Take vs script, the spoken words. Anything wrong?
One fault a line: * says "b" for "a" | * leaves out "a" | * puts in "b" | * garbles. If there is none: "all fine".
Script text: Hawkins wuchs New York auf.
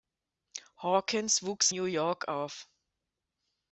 all fine